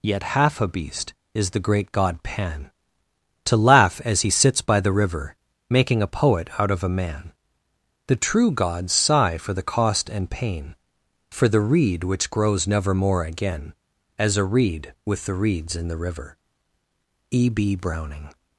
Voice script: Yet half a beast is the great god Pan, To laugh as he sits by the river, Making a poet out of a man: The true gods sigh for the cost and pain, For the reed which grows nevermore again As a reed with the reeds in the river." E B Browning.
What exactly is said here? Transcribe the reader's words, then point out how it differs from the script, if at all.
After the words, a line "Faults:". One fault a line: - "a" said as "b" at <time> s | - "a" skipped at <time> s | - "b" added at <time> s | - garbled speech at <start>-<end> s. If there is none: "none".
Yet half a beast is the great god Pan, To laugh as he sits by the river, Making a poet out of a man: The true gods sigh for the cost and pain, For the reed which grows nevermore again As a reed with the reeds in the river." E B Browning.
Faults:
none